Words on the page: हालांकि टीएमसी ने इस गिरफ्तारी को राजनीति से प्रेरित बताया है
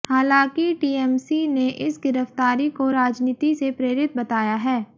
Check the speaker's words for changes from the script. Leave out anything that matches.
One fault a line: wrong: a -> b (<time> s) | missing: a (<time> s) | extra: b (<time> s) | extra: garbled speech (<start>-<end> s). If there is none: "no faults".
no faults